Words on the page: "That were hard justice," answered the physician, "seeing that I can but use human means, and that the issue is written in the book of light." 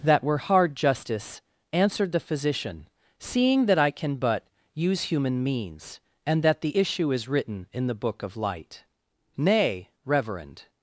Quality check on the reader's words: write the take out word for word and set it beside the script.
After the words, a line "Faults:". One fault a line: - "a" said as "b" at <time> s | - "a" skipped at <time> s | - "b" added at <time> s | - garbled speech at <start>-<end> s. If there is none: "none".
"That were hard justice," answered the physician, "seeing that I can but use human means, and that the issue is written in the book of light." "Nay, reverend
Faults:
- "Nay reverend" added at 9.4 s